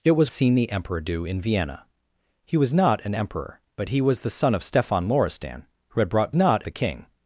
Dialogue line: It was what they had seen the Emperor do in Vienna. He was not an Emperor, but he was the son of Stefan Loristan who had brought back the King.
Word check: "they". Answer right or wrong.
wrong